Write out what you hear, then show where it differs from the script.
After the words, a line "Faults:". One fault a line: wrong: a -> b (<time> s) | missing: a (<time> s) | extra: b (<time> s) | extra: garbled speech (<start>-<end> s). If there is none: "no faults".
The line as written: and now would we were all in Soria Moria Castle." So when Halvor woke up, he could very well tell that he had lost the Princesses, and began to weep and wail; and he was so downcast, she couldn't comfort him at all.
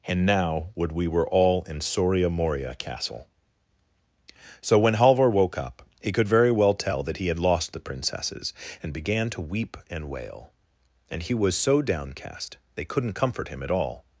and now would we were all in Soria Moria Castle." So when Halvor woke up, he could very well tell that he had lost the Princesses, and began to weep and wail; and he was so downcast, they couldn't comfort him at all.
Faults:
wrong: she -> they (12.7 s)